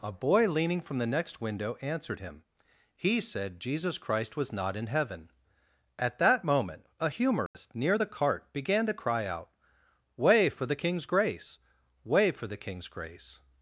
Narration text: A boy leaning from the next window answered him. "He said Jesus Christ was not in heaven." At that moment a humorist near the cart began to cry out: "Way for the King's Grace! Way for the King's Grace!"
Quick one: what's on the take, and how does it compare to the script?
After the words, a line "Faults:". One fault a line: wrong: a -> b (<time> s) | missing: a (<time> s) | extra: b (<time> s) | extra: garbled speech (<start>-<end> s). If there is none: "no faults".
A boy leaning from the next window answered him. "He said Jesus Christ was not in heaven." At that moment a humorist near the cart began to cry out: "Way for the King's Grace! Way for the King's Grace!"
Faults:
no faults